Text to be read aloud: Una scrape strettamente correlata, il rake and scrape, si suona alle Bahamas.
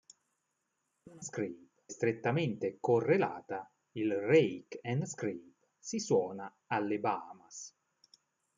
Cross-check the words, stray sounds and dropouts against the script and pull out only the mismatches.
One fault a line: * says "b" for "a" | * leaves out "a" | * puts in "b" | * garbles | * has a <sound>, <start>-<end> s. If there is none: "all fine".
all fine